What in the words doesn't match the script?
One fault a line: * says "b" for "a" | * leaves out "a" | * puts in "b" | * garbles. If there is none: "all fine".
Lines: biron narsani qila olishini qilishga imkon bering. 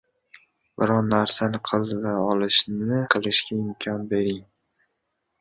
all fine